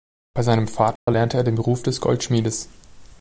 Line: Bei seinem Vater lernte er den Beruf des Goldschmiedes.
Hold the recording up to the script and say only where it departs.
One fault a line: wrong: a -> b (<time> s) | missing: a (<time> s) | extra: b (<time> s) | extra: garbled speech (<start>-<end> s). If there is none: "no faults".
no faults